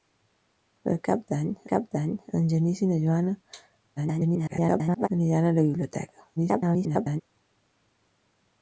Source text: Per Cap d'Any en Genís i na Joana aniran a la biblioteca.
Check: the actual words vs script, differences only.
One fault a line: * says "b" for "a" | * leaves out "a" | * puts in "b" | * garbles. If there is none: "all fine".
* puts in "Cap d'Any"
* garbles
* garbles